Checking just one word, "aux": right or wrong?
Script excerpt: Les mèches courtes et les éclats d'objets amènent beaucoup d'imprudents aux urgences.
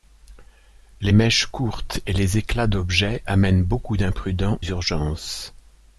wrong